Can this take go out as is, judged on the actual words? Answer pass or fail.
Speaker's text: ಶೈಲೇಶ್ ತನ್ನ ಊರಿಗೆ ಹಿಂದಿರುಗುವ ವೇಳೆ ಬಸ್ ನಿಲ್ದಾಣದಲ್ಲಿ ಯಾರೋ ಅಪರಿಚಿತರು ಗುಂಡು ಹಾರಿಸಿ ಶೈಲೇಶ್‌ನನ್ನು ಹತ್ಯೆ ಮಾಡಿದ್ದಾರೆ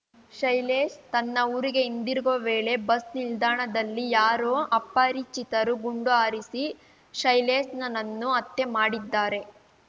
pass